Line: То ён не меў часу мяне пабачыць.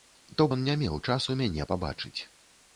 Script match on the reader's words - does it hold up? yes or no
yes